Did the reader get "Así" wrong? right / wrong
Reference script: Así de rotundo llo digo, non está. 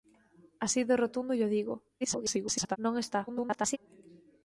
right